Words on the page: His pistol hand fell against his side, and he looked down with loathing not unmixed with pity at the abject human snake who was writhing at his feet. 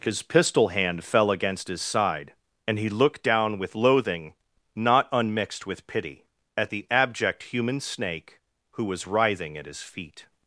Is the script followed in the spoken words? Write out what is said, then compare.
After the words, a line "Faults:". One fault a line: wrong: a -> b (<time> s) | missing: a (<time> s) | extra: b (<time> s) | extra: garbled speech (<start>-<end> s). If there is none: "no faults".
His pistol hand fell against his side, and he looked down with loathing not unmixed with pity at the abject human snake who was writhing at his feet.
Faults:
no faults